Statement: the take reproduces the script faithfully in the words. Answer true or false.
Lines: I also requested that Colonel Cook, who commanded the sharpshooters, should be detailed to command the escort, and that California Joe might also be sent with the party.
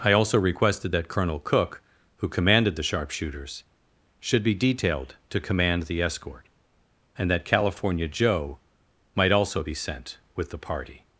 true